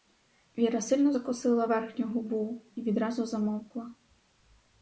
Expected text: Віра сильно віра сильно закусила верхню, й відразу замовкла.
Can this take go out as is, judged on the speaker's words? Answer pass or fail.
fail